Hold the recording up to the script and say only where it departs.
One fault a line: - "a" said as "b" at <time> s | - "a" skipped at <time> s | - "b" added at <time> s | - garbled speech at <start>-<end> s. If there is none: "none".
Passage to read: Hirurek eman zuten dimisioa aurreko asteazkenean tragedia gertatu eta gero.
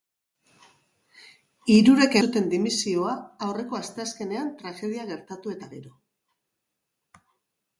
- "eman" skipped at 2.1 s